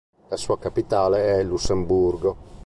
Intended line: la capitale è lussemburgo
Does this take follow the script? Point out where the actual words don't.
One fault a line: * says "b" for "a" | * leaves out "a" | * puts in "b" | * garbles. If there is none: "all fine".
* puts in "sua"